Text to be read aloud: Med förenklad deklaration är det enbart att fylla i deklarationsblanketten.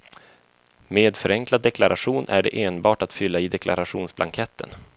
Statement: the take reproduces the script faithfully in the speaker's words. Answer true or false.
true